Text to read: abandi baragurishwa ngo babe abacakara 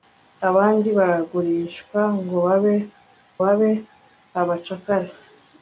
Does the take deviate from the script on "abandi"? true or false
false